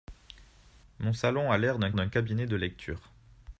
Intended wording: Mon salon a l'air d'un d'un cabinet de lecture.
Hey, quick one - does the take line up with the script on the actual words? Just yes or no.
yes